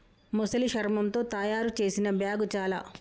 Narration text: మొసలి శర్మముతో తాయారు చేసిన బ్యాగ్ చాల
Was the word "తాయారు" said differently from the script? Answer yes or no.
no